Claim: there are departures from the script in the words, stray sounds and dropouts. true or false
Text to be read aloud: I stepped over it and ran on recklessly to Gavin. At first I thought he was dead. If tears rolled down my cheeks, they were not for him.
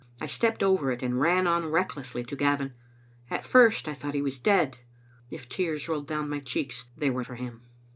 true